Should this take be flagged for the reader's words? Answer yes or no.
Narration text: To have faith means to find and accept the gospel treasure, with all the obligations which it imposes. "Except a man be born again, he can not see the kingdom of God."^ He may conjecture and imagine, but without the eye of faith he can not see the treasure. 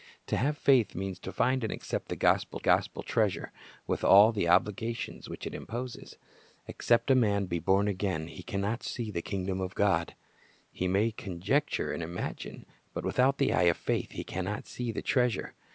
yes